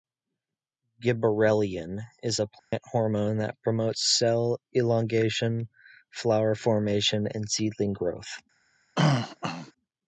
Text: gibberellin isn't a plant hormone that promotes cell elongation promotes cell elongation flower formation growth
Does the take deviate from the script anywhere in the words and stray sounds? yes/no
yes